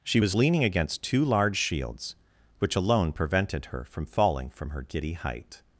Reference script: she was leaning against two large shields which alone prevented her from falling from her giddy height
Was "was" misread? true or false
false